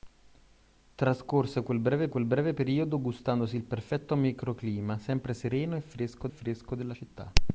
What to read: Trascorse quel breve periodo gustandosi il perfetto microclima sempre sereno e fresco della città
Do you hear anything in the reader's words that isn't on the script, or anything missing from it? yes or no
yes